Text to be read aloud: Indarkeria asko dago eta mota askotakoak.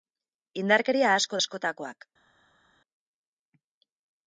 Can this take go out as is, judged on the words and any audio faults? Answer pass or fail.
fail